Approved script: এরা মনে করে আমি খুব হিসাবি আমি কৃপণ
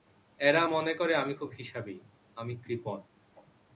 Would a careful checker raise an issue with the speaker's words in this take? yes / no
no